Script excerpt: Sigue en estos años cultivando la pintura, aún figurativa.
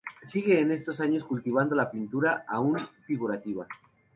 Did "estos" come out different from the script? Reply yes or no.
no